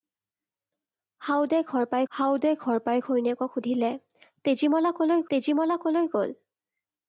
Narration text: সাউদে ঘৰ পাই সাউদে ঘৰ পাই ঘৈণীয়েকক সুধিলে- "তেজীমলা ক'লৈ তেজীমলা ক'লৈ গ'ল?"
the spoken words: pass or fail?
pass